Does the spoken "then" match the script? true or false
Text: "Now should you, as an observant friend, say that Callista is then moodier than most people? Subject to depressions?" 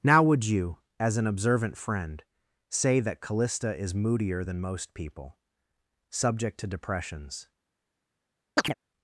false